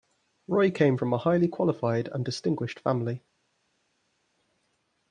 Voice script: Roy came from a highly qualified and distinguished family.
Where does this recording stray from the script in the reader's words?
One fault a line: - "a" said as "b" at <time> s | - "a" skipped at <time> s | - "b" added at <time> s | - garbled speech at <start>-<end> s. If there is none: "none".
none